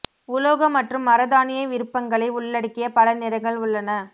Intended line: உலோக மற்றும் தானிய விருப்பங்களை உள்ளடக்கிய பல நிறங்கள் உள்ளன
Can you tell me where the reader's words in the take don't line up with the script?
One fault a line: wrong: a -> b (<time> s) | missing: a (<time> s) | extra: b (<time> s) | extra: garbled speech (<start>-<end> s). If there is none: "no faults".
extra: மர (1.1 s)